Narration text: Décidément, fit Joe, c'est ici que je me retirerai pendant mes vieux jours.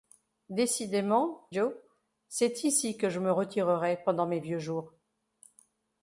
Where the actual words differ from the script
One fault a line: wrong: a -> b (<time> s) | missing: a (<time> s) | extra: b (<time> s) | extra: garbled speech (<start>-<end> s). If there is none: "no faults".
missing: fit (1.5 s)